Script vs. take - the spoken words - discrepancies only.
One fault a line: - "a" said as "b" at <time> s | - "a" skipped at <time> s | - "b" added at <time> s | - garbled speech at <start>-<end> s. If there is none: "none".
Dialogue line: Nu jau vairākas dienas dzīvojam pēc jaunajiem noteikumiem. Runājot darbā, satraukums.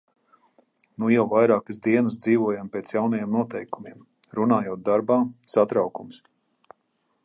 none